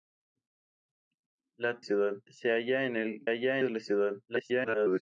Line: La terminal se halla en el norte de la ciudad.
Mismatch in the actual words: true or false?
true